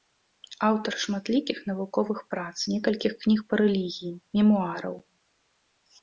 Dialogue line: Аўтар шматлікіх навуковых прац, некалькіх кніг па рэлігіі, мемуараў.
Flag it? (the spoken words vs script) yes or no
no